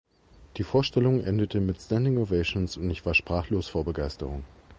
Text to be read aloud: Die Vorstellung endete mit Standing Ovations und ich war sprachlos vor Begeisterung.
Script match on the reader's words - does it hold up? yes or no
yes